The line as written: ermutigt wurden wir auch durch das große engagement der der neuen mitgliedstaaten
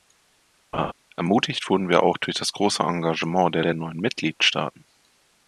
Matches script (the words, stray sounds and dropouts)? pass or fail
fail